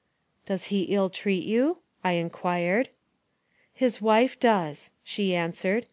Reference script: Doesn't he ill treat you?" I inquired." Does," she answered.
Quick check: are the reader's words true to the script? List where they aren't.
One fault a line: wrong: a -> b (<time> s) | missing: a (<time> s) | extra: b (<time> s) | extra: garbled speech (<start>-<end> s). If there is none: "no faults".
wrong: Doesn't -> Does (0.5 s)
extra: His wife (3.7 s)